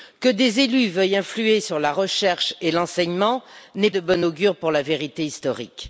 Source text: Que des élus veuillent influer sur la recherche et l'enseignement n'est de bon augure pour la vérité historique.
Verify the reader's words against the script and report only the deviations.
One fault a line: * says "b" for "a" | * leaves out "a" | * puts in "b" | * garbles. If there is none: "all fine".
all fine